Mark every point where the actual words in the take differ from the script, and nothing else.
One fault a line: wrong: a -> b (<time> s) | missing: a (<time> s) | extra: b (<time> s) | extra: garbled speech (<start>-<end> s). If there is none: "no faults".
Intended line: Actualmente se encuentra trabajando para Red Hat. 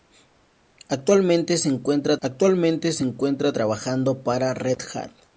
extra: actualmente se encuentra (2.2 s)